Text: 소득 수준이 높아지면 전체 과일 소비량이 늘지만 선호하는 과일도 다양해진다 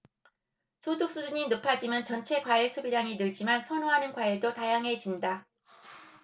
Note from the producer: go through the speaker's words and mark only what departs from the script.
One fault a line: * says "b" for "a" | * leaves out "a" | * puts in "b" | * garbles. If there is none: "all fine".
all fine